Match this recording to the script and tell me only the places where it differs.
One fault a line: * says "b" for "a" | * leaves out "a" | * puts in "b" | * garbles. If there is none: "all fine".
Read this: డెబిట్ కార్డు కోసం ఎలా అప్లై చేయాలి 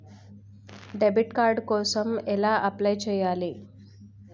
all fine